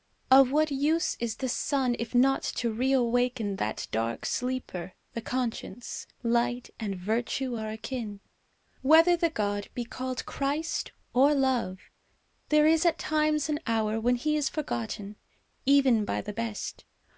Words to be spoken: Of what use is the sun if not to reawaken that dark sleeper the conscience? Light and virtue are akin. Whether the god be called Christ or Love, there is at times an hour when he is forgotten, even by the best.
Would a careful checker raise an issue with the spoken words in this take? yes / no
no